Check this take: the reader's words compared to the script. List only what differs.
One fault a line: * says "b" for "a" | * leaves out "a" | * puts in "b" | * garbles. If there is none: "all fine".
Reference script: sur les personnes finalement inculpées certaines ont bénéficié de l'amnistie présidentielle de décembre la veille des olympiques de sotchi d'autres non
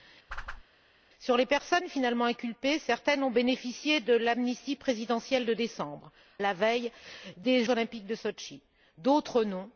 all fine